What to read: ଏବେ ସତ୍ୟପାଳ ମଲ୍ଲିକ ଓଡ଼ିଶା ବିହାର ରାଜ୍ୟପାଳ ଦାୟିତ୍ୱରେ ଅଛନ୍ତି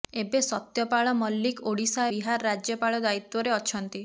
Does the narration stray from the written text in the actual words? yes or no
no